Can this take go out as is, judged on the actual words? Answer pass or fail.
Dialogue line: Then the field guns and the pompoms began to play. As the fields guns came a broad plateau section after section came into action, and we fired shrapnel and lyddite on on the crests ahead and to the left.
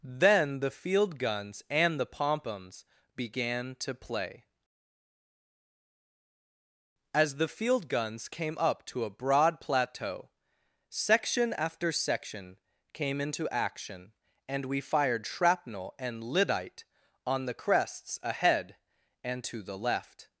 fail